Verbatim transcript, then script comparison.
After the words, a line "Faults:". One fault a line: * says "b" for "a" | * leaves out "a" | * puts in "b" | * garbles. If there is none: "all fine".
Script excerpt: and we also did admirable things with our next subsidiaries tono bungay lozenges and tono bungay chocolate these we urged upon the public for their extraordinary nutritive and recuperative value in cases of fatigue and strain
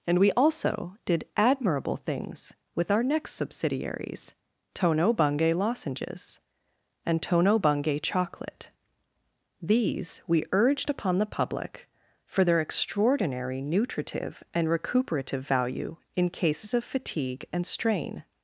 and we also did admirable things with our next subsidiaries tono bungay lozenges and tono bungay chocolate these we urged upon the public for their extraordinary nutritive and recuperative value in cases of fatigue and strain
Faults:
all fine